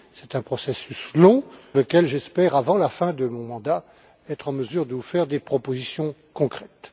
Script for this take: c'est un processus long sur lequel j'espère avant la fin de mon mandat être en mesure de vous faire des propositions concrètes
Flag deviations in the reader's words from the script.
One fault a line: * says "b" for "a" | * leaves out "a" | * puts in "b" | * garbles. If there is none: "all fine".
* leaves out "sur"